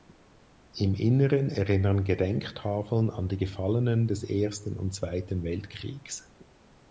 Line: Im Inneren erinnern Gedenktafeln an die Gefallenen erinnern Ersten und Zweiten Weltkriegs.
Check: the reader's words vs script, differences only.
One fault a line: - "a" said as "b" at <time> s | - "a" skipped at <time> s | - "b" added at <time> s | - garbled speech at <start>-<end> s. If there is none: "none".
- "erinnern" said as "des" at 4.1 s